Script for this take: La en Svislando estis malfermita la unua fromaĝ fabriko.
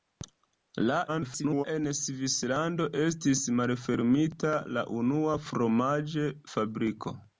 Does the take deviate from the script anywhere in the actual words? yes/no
yes